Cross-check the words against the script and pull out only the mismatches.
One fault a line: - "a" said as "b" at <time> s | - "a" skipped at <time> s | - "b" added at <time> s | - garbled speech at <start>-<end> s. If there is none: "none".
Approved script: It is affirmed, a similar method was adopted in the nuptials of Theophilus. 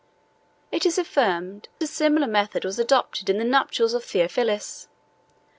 none